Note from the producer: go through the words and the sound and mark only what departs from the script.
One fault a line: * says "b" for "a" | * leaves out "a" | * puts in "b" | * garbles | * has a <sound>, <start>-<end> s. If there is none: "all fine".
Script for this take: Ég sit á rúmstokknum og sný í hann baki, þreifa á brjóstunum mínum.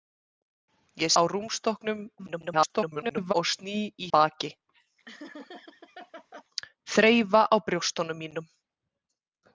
* leaves out "sit"
* garbles
* leaves out "hann"
* has a laugh, 5.1-6.4 s